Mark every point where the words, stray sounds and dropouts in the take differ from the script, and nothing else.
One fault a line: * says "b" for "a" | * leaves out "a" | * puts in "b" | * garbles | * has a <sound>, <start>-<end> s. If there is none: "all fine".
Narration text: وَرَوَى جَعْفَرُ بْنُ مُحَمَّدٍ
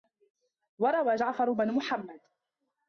all fine